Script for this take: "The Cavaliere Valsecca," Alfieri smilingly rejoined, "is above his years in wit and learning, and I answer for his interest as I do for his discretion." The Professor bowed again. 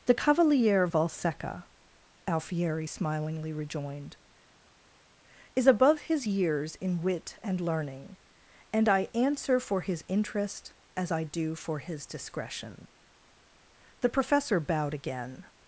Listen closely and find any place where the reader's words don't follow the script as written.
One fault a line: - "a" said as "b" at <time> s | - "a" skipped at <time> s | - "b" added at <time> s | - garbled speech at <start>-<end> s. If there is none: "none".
none